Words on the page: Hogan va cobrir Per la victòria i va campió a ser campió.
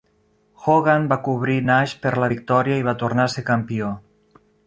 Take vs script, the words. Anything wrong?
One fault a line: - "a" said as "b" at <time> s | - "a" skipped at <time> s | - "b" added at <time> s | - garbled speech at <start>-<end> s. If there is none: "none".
- "Nash" added at 1.7 s
- "campió" said as "tornar" at 3.1 s